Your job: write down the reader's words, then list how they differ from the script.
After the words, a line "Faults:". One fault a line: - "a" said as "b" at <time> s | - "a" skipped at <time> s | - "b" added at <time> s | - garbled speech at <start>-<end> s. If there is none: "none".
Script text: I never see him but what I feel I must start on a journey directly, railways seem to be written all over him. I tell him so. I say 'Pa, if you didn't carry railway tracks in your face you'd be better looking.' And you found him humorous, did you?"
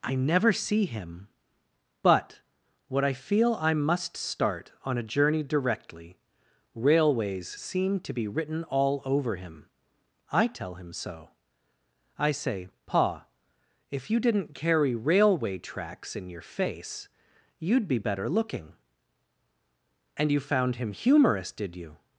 I never see him but what I feel I must start on a journey directly, railways seem to be written all over him. I tell him so. I say 'Pa, if you didn't carry railway tracks in your face you'd be better looking.' And you found him humorous, did you?"
Faults:
none